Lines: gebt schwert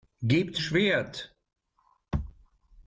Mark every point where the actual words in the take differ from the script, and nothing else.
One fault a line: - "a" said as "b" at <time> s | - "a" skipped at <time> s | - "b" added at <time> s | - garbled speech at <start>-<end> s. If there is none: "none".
none